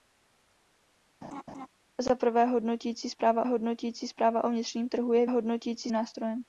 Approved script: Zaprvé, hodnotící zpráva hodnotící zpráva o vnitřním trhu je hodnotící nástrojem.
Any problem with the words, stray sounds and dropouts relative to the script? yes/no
yes